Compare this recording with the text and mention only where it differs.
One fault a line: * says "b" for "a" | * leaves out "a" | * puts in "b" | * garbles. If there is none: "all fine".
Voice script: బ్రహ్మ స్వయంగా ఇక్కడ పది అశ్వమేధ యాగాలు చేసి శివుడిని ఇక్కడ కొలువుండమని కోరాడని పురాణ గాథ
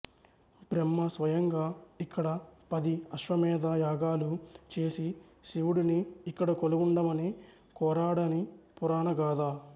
all fine